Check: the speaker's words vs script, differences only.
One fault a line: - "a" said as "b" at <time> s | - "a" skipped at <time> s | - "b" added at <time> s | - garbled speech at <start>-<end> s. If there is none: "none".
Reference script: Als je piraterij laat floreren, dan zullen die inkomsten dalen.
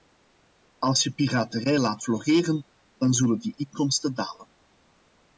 none